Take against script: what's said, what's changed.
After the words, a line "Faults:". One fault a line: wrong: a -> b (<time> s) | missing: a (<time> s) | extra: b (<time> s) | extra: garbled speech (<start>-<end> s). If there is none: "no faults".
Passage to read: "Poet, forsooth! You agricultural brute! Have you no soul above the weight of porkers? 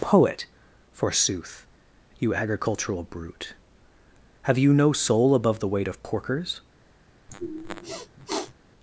"Poet, forsooth! You agricultural brute! Have you no soul above the weight of porkers?
Faults:
no faults